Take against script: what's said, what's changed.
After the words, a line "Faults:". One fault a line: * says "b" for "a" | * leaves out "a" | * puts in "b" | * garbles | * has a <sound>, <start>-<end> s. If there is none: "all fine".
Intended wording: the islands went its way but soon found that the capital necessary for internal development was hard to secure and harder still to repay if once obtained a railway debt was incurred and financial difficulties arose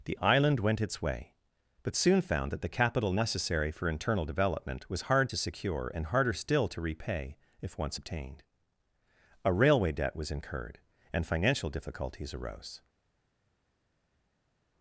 the island went its way but soon found that the capital necessary for internal development was hard to secure and harder still to repay if once obtained a railway debt was incurred and financial difficulties arose
Faults:
* says "island" for "islands"